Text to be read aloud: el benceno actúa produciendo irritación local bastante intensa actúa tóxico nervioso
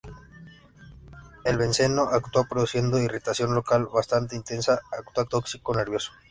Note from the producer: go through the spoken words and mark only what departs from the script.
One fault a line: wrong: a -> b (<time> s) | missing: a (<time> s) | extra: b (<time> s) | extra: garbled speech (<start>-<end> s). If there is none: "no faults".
no faults